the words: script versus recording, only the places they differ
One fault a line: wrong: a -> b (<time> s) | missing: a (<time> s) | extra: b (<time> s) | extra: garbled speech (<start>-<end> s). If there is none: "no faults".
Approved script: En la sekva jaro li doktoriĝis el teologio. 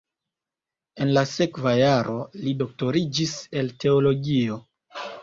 no faults